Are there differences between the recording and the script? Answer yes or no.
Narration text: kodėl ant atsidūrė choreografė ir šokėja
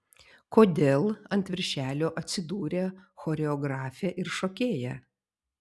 yes